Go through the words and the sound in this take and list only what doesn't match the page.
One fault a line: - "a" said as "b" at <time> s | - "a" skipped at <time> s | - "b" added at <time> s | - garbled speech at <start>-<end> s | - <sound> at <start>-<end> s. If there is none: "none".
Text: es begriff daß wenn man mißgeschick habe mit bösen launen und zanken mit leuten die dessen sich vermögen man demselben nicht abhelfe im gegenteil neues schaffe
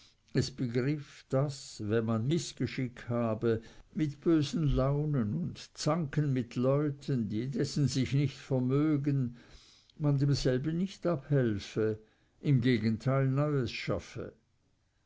- "nicht" added at 8.1 s